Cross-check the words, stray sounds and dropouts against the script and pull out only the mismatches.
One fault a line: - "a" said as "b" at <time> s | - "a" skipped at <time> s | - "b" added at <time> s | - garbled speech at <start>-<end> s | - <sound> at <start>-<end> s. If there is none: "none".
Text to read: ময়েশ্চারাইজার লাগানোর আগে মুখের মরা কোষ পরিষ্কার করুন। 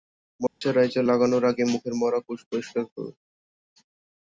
- dropout at 0.5-0.6 s